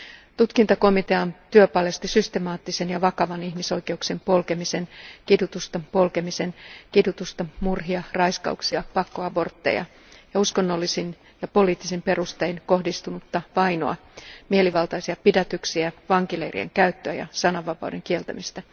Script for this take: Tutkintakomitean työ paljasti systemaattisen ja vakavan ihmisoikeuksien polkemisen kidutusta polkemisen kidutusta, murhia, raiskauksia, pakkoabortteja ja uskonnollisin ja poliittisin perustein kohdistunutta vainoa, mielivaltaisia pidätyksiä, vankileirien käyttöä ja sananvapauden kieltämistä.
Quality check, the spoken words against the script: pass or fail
pass